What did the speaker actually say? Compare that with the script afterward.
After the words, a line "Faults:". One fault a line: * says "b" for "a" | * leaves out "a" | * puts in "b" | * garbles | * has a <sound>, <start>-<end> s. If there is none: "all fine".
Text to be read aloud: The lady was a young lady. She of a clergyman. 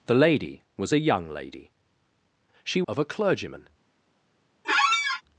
The lady was a young lady. She of a clergyman.
Faults:
* has a squeak, 4.6-5.2 s